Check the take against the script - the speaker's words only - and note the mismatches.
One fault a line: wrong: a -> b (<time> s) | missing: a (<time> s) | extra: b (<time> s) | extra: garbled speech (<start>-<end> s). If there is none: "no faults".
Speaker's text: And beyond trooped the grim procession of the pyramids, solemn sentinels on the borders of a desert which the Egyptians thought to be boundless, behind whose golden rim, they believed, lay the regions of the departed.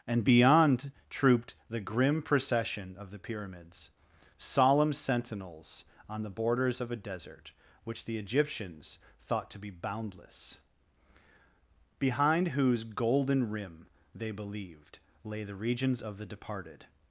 no faults